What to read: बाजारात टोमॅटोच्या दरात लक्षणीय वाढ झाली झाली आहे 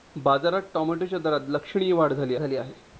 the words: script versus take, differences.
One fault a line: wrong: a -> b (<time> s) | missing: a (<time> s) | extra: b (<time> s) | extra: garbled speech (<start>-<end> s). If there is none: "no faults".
no faults